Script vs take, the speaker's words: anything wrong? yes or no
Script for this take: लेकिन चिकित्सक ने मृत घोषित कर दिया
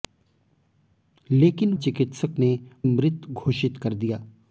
no